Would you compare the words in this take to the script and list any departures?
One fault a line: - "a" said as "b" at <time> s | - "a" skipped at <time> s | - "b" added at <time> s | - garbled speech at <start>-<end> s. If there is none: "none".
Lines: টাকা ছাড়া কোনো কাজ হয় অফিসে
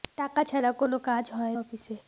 none